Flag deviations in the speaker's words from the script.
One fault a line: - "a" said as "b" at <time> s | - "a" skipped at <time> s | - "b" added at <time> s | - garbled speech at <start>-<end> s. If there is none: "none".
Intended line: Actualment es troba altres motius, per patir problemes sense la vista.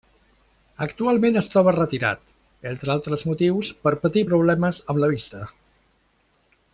- "retirat entre" added at 1.8 s
- "sense" said as "amb" at 4.9 s